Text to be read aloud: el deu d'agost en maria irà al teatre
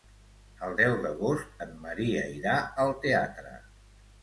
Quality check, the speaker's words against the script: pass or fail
pass